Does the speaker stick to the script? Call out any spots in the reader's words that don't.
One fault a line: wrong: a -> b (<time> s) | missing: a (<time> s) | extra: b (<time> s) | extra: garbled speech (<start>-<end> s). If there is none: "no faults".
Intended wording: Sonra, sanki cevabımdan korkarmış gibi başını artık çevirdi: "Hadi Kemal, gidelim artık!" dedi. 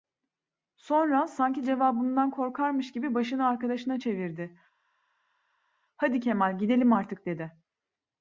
wrong: artık -> arkadaşına (3.5 s)